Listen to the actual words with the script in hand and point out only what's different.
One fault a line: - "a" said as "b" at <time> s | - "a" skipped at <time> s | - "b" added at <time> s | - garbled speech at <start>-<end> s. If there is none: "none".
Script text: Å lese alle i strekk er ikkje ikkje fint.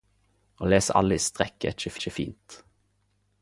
none